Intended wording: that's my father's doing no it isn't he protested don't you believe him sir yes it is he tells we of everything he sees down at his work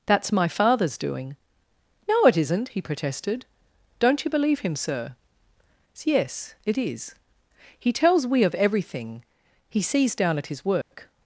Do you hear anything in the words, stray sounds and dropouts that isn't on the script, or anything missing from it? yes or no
yes